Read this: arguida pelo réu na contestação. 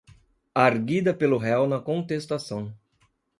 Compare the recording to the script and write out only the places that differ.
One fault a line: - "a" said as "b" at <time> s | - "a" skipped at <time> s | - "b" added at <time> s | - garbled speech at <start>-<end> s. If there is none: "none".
none